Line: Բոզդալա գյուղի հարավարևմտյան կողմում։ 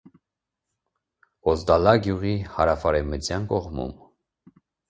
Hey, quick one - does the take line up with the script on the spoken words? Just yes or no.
yes